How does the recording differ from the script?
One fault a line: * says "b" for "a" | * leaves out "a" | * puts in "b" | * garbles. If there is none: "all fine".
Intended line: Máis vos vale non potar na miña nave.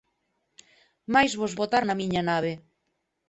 * leaves out "vale non"